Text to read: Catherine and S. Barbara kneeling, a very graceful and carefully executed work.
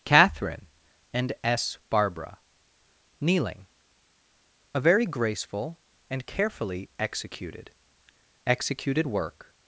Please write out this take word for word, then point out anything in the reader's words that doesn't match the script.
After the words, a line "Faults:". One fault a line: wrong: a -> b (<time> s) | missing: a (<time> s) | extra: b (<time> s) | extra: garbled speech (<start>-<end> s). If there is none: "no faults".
Catherine and S. Barbara kneeling, a very graceful and carefully executed executed work.
Faults:
extra: executed (8.5 s)